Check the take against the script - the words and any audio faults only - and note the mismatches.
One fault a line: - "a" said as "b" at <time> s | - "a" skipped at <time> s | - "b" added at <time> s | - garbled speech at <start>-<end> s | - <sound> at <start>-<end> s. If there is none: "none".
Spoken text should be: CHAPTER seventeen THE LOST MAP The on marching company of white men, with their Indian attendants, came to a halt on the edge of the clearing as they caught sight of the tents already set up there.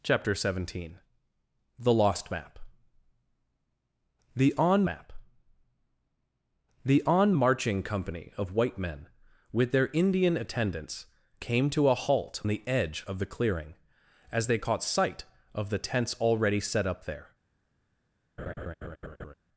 - "MAP The on" added at 4.9 s
- "on" skipped at 12.4 s
- laugh at 18.4-19.3 s